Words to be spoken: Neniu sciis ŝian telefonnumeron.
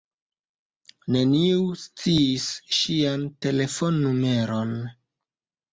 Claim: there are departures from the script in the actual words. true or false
false